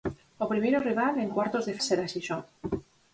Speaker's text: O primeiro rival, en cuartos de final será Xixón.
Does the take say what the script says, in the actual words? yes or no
no